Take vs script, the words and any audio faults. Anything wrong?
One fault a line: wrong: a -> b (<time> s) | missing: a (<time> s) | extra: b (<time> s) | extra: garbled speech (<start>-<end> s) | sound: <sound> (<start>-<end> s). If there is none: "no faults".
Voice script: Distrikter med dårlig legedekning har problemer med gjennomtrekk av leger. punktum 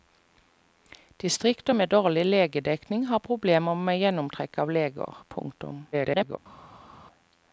extra: garbled speech (5.9-6.4 s)